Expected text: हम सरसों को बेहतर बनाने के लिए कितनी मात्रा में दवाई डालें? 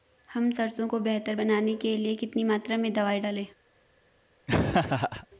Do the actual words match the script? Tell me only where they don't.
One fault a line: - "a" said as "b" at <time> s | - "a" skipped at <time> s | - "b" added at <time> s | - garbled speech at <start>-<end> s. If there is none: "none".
none